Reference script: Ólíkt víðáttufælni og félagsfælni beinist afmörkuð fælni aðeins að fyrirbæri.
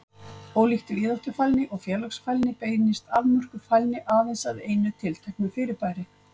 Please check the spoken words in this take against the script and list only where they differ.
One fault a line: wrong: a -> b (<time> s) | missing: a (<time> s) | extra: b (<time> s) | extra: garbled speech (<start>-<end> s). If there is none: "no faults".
extra: einu tilteknu (4.7 s)